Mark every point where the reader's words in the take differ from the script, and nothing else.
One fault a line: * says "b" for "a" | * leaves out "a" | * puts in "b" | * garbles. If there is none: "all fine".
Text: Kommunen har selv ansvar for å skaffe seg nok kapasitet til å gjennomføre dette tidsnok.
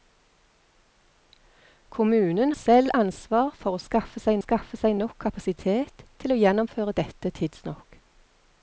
* leaves out "har"
* puts in "skaffe seg"